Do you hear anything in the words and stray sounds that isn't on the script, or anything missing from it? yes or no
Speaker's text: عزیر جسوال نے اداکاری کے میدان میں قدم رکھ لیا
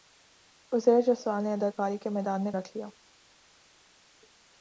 yes